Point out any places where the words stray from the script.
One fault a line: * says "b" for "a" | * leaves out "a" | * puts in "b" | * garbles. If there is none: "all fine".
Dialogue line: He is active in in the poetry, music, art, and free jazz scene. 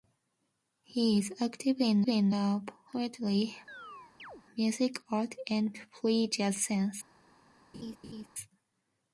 all fine